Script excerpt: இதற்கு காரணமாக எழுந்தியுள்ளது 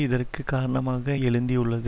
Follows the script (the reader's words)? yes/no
yes